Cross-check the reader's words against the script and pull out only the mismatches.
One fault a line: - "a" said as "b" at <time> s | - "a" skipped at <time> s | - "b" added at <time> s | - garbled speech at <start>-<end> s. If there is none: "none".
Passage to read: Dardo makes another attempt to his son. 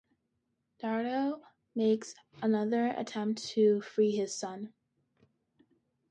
- "free" added at 3.8 s